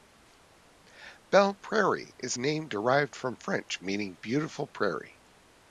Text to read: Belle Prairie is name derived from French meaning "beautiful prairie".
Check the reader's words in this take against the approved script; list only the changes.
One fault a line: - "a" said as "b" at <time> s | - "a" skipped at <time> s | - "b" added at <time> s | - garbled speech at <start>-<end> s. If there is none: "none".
none